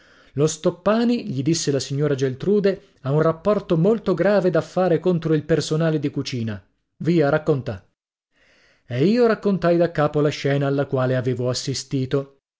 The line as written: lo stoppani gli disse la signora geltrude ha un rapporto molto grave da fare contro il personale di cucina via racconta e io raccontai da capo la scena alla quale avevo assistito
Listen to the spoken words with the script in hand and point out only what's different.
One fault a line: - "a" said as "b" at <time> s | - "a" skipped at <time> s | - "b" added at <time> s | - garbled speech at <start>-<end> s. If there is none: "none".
none